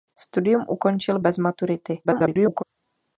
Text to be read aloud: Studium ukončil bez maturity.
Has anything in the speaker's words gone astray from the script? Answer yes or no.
yes